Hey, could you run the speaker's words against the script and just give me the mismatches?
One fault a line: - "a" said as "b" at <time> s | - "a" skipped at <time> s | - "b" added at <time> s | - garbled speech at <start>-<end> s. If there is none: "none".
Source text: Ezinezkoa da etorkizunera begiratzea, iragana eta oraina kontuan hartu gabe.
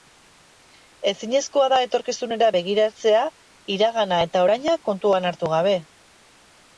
none